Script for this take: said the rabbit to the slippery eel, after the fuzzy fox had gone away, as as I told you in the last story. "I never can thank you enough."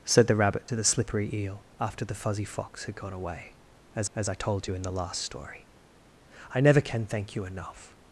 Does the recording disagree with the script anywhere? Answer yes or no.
no